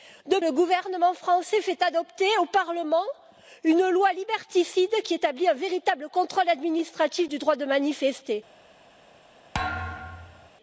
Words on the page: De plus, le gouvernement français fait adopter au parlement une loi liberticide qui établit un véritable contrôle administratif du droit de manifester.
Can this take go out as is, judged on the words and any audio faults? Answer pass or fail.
fail